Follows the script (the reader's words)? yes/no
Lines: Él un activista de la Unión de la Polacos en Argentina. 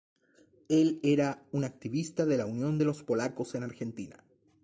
no